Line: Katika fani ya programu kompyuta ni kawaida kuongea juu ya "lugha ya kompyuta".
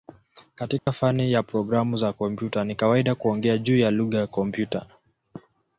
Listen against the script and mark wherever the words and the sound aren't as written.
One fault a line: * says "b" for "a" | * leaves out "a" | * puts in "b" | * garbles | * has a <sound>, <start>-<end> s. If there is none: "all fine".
* has a dropout, 0.8-0.9 s
* puts in "za"